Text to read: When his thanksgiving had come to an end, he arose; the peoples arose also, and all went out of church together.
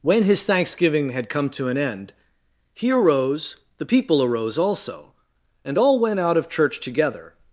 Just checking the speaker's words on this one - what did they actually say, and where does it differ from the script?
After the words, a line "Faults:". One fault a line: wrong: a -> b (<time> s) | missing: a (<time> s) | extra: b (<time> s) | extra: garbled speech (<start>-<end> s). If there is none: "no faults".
When his thanksgiving had come to an end, he arose; the people arose also, and all went out of church together.
Faults:
wrong: peoples -> people (3.8 s)